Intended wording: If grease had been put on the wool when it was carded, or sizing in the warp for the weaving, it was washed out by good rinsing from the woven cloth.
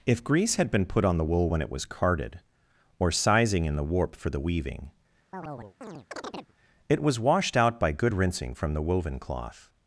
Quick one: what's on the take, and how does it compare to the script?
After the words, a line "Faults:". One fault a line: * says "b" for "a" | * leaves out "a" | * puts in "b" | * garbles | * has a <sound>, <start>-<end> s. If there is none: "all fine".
If grease had been put on the wool when it was carded, or sizing in the warp for the weaving, it was washed out by good rinsing from the woven cloth.
Faults:
* has a chirp, 5.3-6.5 s